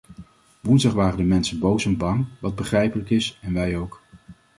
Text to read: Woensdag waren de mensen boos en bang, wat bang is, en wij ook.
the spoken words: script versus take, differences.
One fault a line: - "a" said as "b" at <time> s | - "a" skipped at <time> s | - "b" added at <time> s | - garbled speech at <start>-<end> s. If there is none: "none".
- "bang" said as "begrijpelijk" at 2.5 s